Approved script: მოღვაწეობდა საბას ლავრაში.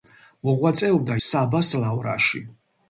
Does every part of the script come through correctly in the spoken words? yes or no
yes